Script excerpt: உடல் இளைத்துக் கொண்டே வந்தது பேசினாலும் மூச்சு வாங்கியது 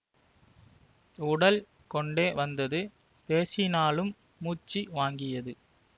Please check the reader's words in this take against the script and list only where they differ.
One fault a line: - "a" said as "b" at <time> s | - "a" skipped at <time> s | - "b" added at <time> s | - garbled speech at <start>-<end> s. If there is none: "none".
- "இளைத்துக்" skipped at 1.6 s